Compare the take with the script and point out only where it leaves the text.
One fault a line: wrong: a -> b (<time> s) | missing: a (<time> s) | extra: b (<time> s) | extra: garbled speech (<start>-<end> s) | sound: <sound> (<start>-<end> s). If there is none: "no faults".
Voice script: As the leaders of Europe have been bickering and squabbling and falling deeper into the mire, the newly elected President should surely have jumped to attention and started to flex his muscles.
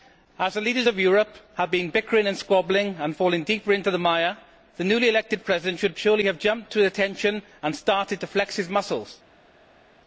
no faults